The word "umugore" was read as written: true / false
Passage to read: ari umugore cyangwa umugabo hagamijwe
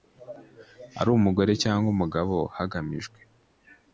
true